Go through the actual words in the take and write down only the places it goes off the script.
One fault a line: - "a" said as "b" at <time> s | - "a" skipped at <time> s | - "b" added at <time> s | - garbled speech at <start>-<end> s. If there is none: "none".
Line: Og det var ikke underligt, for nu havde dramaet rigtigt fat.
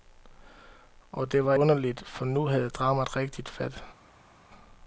- "ikke" skipped at 1.5 s